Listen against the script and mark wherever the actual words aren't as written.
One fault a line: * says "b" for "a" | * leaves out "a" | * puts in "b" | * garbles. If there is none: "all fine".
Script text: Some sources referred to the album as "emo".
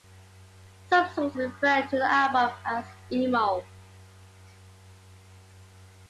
all fine